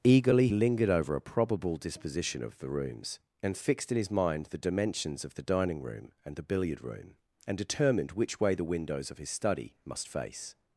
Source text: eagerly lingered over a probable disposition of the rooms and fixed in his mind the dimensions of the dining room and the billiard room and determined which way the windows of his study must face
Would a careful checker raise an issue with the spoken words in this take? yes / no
no